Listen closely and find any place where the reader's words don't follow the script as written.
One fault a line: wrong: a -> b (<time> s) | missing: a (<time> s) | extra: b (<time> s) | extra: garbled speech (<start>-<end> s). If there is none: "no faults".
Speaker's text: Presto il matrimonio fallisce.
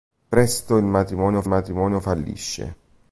extra: matrimonio (1.4 s)